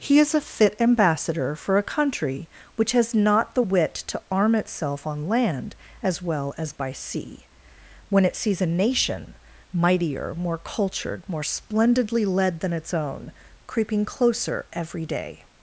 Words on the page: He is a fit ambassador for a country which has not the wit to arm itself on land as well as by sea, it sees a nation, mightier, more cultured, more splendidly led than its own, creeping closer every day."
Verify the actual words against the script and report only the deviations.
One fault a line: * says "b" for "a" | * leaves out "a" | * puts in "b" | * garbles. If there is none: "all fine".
* puts in "when"